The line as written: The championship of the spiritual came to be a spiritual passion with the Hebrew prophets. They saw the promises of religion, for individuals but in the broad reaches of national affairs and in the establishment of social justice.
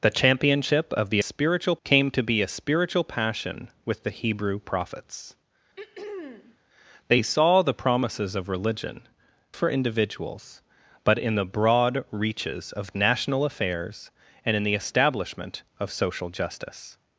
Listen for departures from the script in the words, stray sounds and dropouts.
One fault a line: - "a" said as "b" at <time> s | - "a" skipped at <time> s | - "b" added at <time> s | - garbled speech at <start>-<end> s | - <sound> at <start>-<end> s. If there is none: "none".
- throat clearing at 5.8-6.6 s